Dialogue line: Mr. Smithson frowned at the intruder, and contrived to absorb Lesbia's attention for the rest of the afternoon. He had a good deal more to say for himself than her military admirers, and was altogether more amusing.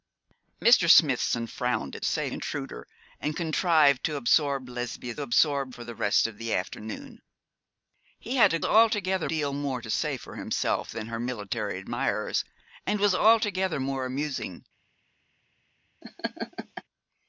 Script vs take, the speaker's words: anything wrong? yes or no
yes